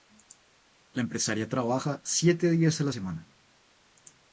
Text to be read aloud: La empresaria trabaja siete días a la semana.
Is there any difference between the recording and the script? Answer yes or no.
no